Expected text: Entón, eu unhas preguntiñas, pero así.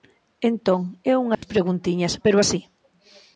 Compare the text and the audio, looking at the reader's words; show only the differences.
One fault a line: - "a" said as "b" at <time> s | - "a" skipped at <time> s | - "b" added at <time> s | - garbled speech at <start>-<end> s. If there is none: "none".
none